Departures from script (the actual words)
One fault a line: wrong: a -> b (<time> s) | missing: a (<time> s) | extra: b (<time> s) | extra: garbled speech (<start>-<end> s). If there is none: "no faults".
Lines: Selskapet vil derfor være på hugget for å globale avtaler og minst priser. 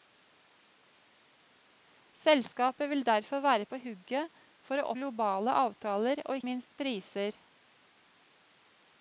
no faults